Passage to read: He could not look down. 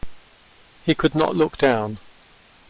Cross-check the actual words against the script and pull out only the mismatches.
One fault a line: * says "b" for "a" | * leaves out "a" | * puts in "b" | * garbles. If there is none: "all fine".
all fine